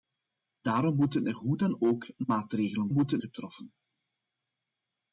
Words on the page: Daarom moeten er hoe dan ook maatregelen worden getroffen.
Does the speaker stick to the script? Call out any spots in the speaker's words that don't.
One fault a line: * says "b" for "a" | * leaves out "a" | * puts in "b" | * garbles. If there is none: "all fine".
* says "moeten" for "worden"